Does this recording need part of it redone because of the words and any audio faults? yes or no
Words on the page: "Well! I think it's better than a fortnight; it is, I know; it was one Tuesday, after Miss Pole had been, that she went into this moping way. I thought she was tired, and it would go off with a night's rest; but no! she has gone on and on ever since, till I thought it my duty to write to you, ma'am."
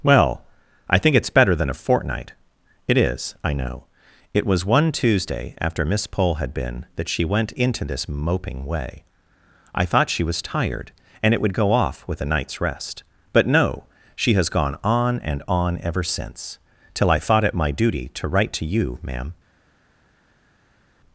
no